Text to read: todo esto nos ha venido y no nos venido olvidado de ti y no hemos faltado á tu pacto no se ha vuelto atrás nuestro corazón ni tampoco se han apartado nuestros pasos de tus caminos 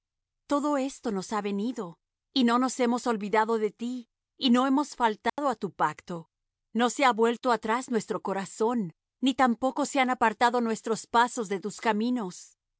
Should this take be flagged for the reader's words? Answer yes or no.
yes